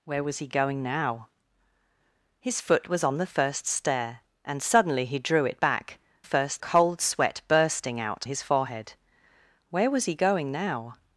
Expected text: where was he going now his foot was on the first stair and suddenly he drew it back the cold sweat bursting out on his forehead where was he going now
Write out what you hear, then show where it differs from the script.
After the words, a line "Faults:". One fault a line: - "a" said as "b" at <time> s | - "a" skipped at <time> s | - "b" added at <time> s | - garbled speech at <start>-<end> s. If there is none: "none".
where was he going now his foot was on the first stair and suddenly he drew it back first cold sweat bursting out his forehead where was he going now
Faults:
- "the" said as "first" at 6.2 s
- "on" skipped at 8.3 s